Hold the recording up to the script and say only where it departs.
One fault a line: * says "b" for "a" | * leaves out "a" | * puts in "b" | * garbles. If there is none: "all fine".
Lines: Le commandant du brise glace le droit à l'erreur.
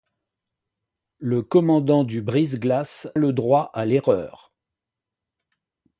all fine